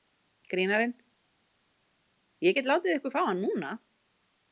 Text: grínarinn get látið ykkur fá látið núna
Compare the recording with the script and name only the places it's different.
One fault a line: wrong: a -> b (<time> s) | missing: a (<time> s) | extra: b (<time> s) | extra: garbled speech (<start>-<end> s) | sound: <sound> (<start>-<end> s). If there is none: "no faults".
extra: ég (2.5 s)
wrong: látið -> hann (3.3 s)